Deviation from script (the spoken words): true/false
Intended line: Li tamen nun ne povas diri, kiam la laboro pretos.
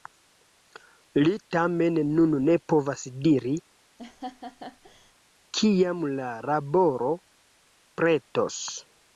false